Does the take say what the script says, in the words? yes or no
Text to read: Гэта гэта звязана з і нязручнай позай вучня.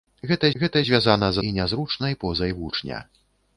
yes